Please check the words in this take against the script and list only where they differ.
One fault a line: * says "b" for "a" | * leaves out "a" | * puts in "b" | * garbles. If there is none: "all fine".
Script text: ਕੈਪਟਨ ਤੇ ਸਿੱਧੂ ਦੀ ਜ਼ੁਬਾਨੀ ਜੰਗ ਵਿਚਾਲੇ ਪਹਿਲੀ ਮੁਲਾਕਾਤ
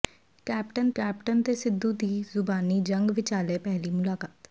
* puts in "ਕੈਪਟਨ"